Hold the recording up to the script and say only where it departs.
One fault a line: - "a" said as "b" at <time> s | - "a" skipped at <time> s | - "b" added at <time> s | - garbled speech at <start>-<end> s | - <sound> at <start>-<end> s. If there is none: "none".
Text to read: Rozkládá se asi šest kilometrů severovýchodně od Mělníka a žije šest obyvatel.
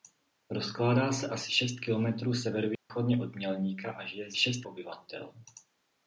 - dropout at 2.7-2.9 s